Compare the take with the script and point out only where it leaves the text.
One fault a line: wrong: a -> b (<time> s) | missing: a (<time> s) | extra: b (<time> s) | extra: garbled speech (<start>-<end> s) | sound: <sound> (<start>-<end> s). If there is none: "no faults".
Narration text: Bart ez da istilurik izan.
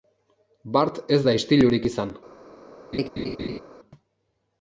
sound: laugh (2.9-3.6 s)